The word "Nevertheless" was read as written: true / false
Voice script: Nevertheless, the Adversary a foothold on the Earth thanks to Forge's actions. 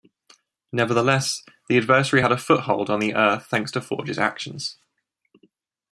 true